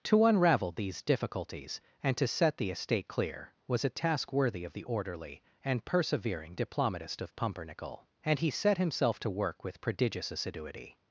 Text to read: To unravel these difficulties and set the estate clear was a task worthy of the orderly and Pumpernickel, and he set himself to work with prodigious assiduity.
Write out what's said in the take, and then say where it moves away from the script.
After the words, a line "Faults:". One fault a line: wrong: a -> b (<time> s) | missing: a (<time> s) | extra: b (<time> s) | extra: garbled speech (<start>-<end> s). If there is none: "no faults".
To unravel these difficulties and to set the estate clear was a task worthy of the orderly and persevering diplomatist of Pumpernickel, and he set himself to work with prodigious assiduity.
Faults:
extra: to (2.2 s)
extra: persevering diplomatist of (5.8 s)